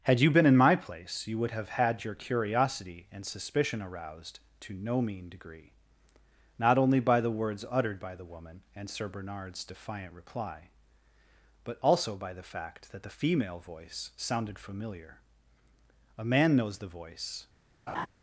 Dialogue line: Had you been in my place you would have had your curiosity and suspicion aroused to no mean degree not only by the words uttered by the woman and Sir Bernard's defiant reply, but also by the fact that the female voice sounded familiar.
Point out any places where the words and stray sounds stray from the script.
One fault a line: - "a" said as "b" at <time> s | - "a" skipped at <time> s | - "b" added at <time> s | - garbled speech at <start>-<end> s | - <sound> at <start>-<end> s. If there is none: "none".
- "A man knows the voice" added at 16.2 s
- laugh at 17.9-18.1 s